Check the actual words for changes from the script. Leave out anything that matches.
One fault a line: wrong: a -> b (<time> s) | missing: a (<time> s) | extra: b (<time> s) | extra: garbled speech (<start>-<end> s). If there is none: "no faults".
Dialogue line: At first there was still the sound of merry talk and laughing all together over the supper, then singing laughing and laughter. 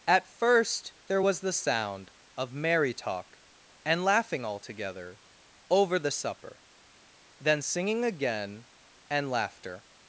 missing: still (1.4 s)
wrong: laughing -> again (8.1 s)